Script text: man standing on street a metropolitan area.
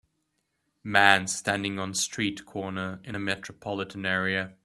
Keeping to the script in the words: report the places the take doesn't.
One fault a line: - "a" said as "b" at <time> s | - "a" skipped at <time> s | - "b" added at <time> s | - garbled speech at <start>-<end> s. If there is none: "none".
- "corner in" added at 2.5 s